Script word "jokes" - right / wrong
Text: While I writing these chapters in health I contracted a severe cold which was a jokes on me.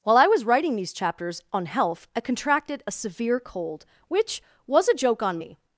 wrong